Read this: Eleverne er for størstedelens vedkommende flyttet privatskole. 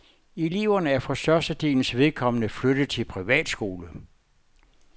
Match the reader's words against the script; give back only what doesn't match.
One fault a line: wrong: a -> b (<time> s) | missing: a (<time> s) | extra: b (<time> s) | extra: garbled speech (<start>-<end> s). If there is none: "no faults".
extra: til (2.9 s)